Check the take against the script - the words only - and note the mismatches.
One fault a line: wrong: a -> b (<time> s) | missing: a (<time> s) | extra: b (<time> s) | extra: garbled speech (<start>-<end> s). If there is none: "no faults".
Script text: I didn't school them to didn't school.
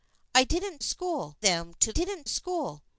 no faults